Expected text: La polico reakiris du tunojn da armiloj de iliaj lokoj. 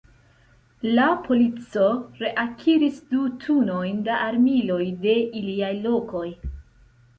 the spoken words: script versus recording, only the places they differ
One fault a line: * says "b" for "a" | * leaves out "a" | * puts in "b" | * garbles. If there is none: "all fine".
all fine